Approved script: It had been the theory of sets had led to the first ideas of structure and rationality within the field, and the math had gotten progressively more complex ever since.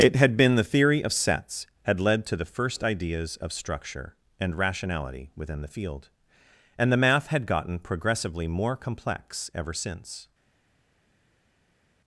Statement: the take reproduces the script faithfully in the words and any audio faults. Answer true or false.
true